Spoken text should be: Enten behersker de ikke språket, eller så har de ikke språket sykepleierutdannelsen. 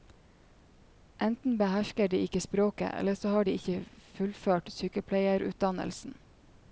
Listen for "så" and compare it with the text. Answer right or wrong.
right